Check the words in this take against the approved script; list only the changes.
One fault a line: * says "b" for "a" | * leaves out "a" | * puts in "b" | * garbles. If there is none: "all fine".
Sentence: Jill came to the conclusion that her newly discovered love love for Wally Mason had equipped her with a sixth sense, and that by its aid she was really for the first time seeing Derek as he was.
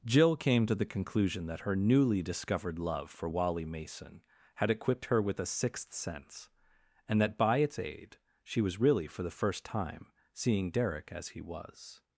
* leaves out "love"